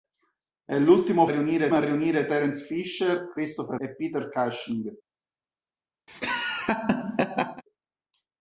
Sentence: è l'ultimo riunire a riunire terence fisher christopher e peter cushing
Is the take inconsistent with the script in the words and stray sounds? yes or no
yes